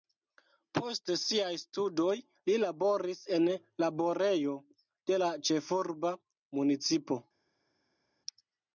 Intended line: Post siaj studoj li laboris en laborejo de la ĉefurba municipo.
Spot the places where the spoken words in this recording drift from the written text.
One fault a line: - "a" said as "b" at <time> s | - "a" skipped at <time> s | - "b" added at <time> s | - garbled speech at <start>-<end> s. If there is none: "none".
none